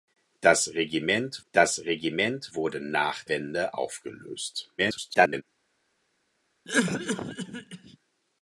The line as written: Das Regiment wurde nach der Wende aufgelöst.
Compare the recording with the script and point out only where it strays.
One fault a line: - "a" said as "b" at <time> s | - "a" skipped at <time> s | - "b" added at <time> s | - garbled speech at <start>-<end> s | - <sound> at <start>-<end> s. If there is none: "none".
- "das Regiment" added at 1.5 s
- "der" skipped at 3.2 s
- garbled speech at 4.8-5.4 s
- cough at 6.6-8.0 s